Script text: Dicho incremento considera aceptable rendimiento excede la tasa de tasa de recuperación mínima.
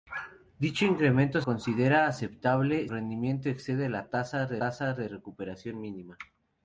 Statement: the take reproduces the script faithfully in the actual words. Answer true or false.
true